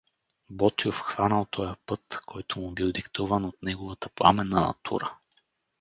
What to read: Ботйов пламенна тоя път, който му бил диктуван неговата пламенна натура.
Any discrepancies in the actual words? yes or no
yes